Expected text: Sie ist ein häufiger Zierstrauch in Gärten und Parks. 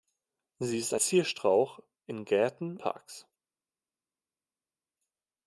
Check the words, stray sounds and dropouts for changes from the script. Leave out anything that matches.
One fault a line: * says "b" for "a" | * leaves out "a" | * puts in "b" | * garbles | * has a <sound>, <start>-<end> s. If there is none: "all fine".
* leaves out "ein häufiger"
* leaves out "und"